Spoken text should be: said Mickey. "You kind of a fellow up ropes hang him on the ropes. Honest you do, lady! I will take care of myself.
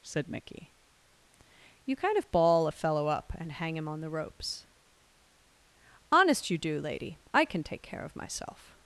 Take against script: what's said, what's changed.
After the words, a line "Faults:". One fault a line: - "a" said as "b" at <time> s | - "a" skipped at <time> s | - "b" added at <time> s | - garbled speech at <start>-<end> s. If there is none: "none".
said Mickey. "You kind of ball a fellow up and hang him on the ropes. Honest you do, lady! I can take care of myself.
Faults:
- "ball" added at 2.3 s
- "ropes" said as "and" at 3.4 s
- "will" said as "can" at 7.5 s